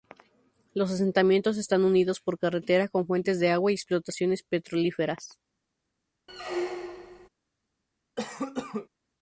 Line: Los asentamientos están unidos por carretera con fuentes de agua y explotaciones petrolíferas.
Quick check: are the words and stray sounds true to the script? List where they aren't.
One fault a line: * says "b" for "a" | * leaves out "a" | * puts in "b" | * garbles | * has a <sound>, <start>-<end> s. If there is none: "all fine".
* has a squeak, 6.3-7.3 s
* has a cough, 8.2-8.9 s